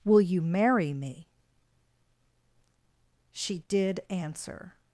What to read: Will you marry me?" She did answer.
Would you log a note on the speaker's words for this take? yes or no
no